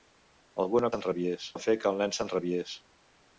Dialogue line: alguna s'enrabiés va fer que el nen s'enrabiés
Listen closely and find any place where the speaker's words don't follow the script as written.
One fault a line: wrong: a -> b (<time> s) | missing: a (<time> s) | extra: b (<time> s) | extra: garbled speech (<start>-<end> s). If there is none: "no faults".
no faults